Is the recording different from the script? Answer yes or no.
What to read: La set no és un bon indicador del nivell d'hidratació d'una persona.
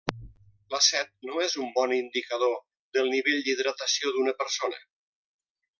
no